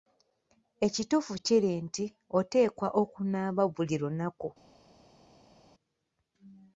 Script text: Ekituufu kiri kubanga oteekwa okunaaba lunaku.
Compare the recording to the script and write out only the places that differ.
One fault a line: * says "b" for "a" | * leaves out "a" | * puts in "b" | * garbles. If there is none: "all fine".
* says "nti" for "kubanga"
* puts in "buli"